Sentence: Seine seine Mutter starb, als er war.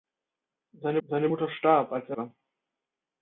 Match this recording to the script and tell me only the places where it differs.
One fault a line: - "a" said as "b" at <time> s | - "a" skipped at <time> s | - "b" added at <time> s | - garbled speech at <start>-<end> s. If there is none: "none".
none